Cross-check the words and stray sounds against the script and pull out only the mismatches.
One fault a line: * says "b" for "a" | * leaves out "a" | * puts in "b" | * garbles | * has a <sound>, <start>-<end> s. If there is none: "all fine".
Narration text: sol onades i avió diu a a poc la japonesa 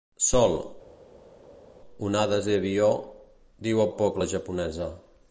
all fine